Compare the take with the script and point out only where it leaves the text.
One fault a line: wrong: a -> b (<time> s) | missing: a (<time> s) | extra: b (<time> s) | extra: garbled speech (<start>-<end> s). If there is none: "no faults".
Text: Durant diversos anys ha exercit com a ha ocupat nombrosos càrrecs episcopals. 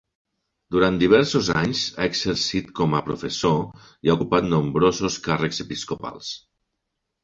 extra: professor i (3.1 s)